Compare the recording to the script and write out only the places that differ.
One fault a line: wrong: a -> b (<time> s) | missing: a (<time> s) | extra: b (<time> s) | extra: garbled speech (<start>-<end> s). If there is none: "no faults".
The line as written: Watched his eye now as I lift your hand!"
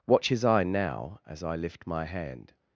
wrong: Watched -> Watch (0.1 s)
wrong: your -> my (1.9 s)